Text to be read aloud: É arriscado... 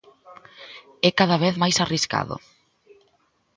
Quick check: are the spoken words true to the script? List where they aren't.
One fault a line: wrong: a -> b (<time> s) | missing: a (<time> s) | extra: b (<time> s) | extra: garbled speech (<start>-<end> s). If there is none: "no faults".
extra: cada vez máis (1.2 s)